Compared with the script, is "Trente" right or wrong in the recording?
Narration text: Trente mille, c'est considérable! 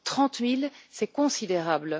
right